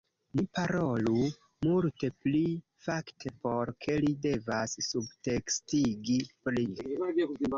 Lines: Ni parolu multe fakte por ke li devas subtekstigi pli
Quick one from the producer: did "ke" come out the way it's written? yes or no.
yes